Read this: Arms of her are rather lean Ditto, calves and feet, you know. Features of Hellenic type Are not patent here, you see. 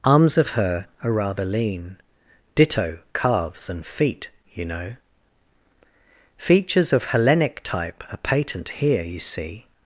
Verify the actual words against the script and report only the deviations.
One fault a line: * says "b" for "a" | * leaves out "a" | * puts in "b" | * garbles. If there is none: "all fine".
* leaves out "not"